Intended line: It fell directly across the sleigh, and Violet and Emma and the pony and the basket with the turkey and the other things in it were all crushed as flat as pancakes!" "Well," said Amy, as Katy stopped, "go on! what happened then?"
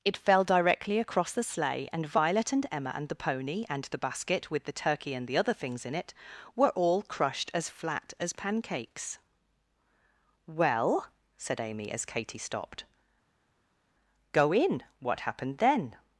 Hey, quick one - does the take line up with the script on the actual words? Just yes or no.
no